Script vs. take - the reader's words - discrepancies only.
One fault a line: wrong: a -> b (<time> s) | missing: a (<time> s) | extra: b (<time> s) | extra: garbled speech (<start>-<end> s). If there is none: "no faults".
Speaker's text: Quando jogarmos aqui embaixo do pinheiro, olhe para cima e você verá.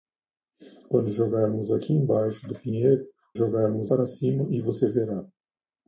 wrong: olhe -> jogarmos (3.3 s)